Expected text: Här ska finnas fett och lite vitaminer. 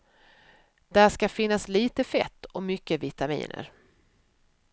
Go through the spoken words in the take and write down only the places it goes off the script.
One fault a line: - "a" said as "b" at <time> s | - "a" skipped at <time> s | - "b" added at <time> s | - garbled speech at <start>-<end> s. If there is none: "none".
- "Här" said as "Där" at 0.9 s
- "lite" added at 1.7 s
- "lite" said as "mycket" at 2.6 s